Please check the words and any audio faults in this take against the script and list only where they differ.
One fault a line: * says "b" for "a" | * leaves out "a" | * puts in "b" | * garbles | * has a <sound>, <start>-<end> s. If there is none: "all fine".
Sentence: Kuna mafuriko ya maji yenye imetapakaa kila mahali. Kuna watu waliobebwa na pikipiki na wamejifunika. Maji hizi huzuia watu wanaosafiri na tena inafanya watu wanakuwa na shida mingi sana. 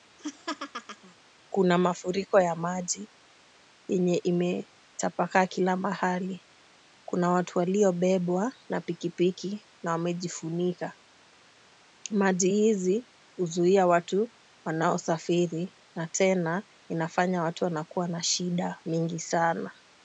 * has a laugh, 0.2-1.1 s